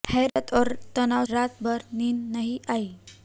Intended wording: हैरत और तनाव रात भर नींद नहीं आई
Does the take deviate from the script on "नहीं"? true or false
false